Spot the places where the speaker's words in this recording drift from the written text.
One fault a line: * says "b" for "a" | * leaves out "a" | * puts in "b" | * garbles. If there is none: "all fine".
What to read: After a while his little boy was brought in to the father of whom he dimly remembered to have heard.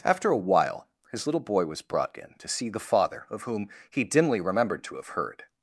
* puts in "see"